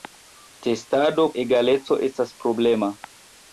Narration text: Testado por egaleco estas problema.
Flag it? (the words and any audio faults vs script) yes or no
yes